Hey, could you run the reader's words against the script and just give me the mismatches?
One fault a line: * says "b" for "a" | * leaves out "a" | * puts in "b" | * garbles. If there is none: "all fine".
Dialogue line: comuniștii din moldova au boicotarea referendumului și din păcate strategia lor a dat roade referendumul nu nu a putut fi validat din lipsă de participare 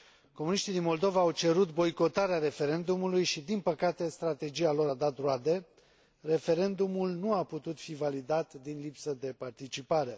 * puts in "cerut"
* leaves out "nu"